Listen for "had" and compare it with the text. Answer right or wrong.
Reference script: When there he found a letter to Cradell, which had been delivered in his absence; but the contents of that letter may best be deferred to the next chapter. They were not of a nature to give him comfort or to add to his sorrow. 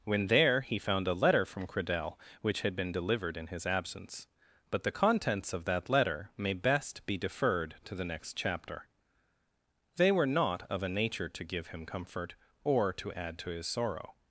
right